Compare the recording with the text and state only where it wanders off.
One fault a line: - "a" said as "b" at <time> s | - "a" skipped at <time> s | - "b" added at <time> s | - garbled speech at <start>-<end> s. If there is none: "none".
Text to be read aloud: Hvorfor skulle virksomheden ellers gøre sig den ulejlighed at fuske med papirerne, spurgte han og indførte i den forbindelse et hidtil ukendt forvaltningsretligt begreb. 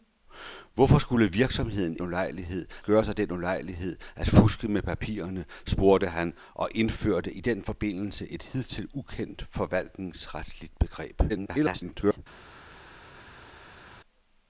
- "ellers" said as "ulejlighed" at 2.0 s
- garbled speech at 11.3-12.2 s